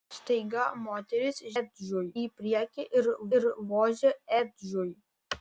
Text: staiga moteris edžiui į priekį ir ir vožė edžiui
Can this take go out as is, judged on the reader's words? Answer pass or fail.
pass